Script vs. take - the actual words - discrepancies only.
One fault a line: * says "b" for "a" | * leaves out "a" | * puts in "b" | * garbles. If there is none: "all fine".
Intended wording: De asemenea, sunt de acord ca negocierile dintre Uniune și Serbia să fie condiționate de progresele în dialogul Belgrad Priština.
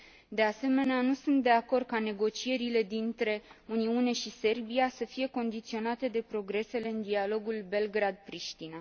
* puts in "nu"